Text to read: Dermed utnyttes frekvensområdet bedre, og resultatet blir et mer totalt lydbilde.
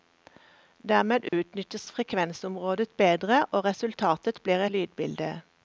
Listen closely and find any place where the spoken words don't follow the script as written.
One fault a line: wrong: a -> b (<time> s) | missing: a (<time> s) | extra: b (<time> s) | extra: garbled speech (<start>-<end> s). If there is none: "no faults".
missing: et mer totalt (4.7 s)